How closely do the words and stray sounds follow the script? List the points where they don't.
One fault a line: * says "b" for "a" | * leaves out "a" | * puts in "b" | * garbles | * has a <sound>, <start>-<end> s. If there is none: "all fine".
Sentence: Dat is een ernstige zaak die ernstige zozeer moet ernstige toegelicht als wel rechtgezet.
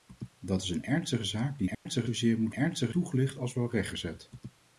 * has a dropout, 1.7-1.9 s